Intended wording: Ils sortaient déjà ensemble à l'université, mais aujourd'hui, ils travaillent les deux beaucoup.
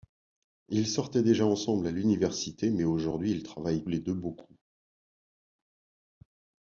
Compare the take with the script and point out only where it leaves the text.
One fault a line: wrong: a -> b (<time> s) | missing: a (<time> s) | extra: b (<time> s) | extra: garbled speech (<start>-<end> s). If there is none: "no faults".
no faults